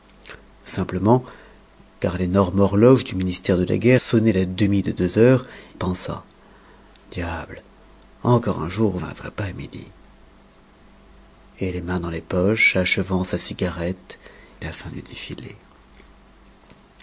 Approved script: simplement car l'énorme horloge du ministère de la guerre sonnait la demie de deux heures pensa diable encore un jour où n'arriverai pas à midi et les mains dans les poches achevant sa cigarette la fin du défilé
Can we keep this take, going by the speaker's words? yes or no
yes